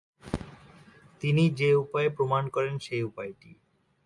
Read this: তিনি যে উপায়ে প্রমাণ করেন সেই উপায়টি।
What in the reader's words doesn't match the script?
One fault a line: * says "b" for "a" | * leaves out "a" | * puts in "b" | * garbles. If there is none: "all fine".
all fine